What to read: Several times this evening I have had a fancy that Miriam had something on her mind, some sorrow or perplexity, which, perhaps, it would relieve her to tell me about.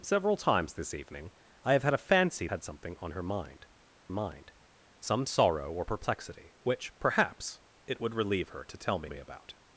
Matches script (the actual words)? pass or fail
fail